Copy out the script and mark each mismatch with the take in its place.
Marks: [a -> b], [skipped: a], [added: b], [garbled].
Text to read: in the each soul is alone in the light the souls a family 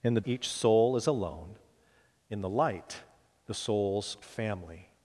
in the each soul is alone in the light the souls a family